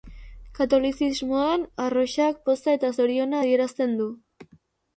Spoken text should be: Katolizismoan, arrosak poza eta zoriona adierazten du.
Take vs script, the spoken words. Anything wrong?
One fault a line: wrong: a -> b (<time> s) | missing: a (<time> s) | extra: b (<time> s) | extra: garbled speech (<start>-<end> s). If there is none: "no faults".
no faults